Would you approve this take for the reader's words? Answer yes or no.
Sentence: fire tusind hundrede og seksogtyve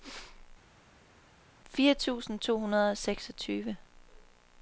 no